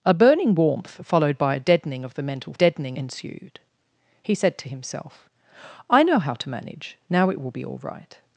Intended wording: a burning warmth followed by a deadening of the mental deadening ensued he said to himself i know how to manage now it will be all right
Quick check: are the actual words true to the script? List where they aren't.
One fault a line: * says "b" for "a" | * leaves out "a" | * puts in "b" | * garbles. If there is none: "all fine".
all fine